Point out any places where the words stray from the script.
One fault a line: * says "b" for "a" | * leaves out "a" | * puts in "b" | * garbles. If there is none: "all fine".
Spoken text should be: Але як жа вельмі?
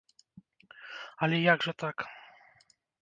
* says "так" for "вельмі"